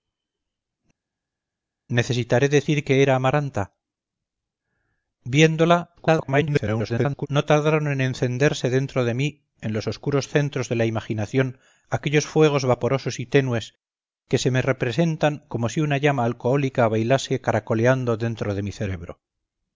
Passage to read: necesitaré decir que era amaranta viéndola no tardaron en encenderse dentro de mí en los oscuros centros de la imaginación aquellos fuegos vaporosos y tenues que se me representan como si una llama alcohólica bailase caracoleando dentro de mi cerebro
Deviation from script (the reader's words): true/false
true